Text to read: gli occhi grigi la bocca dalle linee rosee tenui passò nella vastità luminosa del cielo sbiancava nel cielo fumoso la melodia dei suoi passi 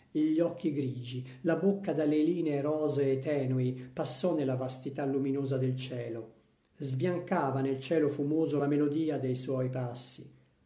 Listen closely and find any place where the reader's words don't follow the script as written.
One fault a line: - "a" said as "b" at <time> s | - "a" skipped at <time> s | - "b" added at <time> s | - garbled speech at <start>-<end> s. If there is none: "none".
none